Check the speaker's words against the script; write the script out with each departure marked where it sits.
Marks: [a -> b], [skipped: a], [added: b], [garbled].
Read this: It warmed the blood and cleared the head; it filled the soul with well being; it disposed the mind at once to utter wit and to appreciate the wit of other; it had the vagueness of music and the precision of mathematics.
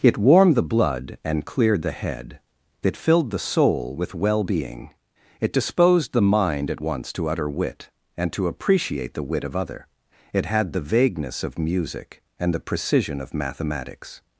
It warmed the blood and cleared the head; it filled the soul with well being; it disposed the mind at once to utter wit and to appreciate the wit of other; it had the vagueness of music and the precision of mathematics.